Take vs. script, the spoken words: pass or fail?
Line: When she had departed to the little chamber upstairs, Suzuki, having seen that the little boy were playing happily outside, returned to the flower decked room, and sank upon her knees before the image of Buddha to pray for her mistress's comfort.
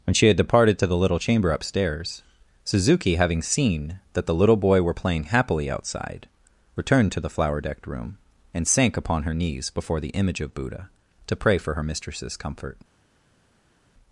pass